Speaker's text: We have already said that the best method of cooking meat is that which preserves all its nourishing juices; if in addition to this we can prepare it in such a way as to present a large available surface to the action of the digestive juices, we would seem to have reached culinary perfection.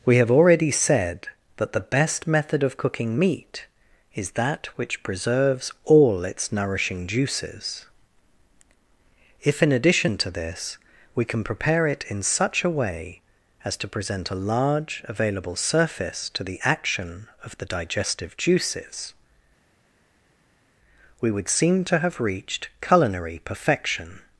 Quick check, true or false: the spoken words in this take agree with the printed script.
true